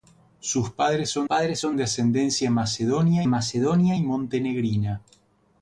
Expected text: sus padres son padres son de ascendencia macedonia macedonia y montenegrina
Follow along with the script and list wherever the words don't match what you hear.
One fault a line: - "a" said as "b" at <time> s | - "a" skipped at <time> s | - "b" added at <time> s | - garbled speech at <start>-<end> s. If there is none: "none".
none